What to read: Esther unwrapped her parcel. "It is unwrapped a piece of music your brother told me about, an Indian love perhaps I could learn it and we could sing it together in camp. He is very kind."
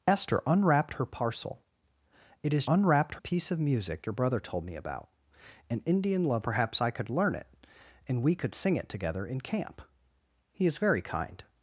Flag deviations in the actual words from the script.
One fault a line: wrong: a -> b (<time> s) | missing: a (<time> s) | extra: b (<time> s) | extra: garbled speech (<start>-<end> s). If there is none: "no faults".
no faults